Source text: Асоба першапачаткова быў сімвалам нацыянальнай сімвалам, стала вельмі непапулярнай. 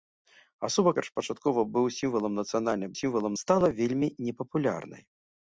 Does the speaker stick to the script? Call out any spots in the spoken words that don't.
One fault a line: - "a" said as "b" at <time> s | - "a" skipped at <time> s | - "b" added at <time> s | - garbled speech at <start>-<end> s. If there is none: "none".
none